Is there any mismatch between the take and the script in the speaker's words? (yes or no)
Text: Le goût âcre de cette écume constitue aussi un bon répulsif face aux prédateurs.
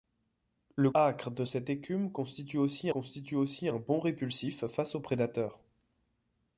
yes